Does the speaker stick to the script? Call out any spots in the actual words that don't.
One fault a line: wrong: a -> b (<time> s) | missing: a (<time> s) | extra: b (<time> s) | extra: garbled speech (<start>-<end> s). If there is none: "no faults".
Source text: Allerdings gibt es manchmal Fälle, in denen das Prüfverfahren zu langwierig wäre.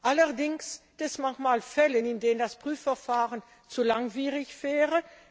missing: gibt (0.8 s)